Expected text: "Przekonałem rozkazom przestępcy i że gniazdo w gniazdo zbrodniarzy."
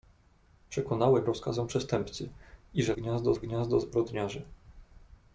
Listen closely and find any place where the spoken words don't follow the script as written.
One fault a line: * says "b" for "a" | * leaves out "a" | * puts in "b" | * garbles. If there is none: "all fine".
all fine